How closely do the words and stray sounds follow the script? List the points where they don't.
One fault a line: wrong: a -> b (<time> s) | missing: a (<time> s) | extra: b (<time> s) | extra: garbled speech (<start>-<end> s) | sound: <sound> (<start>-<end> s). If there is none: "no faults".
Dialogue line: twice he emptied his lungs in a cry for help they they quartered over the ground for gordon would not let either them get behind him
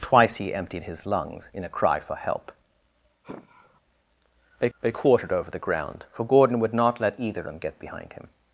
sound: sigh (3.2-3.8 s)